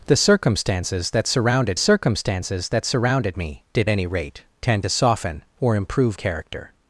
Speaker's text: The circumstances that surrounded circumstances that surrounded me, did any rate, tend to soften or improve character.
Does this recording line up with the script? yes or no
yes